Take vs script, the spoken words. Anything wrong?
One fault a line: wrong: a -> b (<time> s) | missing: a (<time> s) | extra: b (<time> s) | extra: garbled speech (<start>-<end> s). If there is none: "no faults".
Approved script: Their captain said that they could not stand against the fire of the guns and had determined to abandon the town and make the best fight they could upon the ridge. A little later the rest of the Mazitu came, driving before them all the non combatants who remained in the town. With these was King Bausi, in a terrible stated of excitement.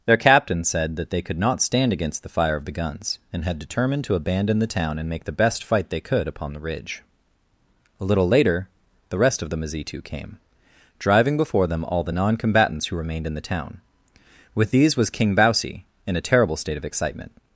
wrong: stated -> state (16.6 s)